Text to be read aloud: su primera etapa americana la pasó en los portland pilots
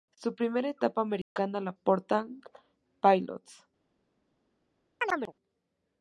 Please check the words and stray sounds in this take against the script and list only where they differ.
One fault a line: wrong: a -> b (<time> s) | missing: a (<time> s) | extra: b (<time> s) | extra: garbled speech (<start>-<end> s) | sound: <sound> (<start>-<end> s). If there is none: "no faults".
sound: dropout (1.2-1.4 s)
missing: pasó en los (1.7 s)
sound: chirp (5.0-5.3 s)